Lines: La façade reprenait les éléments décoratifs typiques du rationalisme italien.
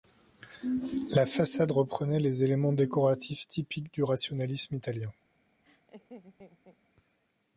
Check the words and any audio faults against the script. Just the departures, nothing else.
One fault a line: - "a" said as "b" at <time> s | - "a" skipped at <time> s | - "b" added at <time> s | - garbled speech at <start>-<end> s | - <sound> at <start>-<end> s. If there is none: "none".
- laugh at 5.6-6.8 s